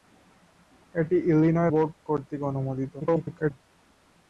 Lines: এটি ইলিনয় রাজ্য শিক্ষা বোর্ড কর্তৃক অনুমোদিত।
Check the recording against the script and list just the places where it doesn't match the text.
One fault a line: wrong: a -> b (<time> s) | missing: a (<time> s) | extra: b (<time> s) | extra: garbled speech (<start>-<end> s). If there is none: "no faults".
missing: রাজ্য শিক্ষা (1.7 s)
extra: garbled speech (3.0-3.5 s)